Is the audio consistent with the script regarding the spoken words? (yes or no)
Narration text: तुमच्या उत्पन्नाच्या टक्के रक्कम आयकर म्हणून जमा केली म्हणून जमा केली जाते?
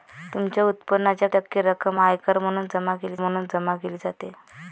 yes